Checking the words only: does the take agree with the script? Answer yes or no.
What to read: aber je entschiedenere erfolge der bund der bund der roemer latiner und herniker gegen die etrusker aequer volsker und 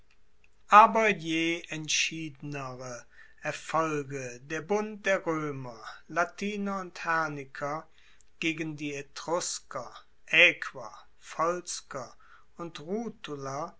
no